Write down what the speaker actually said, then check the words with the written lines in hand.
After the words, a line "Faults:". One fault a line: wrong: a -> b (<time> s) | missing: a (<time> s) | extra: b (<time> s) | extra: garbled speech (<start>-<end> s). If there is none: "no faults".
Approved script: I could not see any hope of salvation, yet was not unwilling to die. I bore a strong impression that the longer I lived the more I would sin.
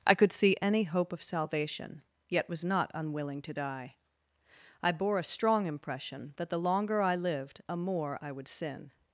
I could see any hope of salvation, yet was not unwilling to die. I bore a strong impression that the longer I lived a more I would sin.
Faults:
missing: not (0.3 s)
wrong: the -> a (7.7 s)